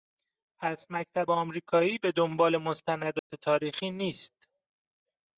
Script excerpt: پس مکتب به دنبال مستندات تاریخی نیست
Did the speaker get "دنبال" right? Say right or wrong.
right